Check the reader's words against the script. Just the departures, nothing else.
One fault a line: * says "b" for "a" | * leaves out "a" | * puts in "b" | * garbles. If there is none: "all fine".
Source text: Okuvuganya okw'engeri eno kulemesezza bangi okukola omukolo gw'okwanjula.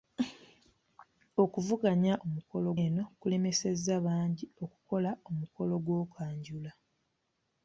* says "omukolo" for "okw'engeri"